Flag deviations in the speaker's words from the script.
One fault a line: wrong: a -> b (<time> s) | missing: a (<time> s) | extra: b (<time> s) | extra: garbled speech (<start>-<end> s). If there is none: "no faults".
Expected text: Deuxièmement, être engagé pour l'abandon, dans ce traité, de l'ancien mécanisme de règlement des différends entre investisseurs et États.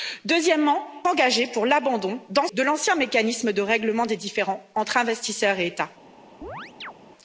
missing: être (0.8 s)
missing: ce traité (2.5 s)